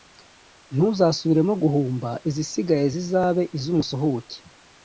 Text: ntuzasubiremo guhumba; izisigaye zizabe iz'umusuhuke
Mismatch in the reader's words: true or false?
false